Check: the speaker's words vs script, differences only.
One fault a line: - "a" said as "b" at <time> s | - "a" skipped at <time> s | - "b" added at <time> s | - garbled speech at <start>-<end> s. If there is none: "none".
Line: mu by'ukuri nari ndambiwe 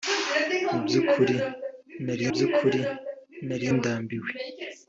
- "by'ukuri nari" added at 2.3 s